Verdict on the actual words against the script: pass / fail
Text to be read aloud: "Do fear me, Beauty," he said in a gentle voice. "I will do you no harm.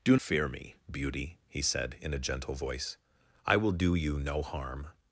pass